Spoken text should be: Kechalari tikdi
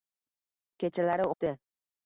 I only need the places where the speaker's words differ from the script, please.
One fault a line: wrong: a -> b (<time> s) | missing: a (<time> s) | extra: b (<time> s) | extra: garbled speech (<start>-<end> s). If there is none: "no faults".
no faults